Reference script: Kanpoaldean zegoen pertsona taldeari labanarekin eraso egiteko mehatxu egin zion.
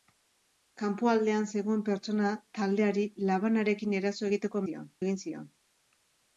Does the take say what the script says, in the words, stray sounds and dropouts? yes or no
no